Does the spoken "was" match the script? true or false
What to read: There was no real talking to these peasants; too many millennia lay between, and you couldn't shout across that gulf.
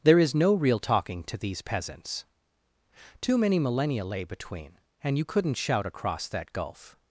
false